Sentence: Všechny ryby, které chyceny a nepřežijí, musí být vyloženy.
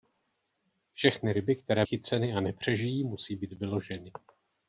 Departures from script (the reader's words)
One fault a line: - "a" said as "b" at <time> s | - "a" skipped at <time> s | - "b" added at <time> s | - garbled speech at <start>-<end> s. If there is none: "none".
none